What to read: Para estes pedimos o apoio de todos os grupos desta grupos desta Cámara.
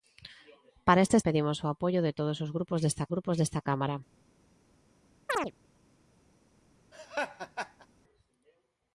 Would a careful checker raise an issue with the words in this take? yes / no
no